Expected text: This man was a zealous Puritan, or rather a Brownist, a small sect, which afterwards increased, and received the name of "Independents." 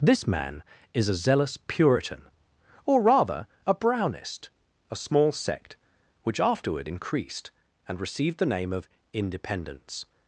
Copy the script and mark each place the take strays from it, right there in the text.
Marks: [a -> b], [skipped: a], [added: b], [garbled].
This man [was -> is] a zealous Puritan, or rather a Brownist, a small sect, which [afterwards -> afterward] increased, and received the name of "Independents."